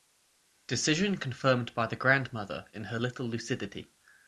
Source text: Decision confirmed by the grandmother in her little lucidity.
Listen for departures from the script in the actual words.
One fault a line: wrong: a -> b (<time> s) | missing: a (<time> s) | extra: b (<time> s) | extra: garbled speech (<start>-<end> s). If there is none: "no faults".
no faults